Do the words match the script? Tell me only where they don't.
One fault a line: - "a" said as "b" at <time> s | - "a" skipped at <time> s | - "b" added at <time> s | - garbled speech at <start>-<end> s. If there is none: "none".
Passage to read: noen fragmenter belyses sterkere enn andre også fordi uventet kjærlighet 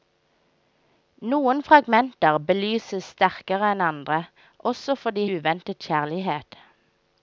none